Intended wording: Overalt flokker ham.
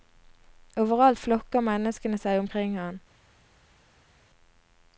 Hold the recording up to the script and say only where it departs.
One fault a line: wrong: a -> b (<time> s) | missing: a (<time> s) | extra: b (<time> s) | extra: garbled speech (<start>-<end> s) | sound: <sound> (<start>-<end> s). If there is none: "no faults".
extra: menneskene seg omkring (1.7 s)